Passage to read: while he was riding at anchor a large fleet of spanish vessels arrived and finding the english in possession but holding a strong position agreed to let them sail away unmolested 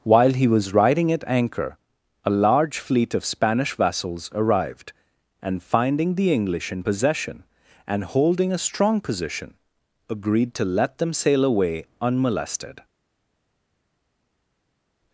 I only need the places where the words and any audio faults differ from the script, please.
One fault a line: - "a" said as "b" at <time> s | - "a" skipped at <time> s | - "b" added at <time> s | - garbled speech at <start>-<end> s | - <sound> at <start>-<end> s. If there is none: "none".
- "but" said as "and" at 7.9 s